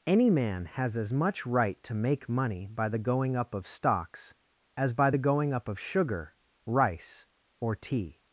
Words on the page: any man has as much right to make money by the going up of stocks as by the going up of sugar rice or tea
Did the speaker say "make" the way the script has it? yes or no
yes